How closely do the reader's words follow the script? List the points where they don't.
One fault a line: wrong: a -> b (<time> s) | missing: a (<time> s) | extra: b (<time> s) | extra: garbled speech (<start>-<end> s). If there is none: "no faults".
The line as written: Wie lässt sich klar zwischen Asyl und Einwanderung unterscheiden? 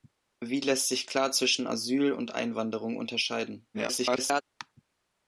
extra: garbled speech (3.7-4.4 s)